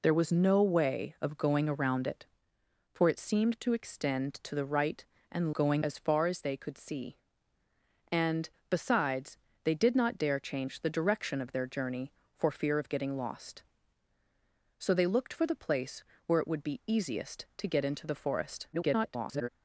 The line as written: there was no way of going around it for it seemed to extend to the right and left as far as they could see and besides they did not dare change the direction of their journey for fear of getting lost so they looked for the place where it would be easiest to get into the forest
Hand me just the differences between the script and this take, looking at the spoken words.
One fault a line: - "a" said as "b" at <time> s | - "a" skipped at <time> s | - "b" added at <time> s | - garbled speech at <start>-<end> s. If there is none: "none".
- "left" said as "going" at 5.5 s
- garbled speech at 18.7-19.5 s